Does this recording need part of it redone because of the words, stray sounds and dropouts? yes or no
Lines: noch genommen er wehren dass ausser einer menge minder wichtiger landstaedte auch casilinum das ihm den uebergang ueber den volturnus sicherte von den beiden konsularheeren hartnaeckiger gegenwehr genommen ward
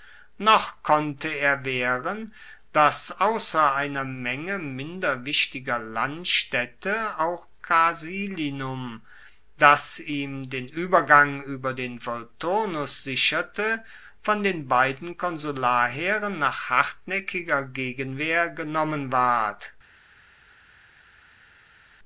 yes